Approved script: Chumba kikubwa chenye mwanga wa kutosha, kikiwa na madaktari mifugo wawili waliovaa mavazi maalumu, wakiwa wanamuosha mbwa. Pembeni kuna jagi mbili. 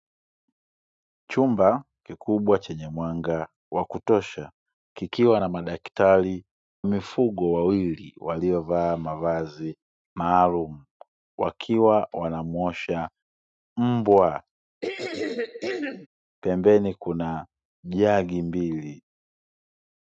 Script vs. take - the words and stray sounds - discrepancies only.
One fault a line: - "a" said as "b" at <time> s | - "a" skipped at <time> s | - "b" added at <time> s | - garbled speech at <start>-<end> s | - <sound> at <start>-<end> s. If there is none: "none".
- throat clearing at 14.8-16.1 s